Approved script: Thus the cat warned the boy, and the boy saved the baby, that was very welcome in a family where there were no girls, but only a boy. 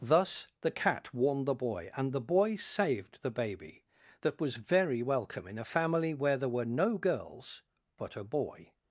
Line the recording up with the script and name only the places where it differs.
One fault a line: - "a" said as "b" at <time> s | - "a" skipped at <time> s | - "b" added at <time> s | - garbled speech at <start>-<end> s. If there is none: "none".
- "only" skipped at 8.2 s